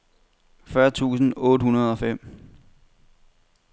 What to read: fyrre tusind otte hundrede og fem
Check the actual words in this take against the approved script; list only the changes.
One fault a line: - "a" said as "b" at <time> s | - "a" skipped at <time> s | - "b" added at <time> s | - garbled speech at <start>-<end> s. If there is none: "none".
none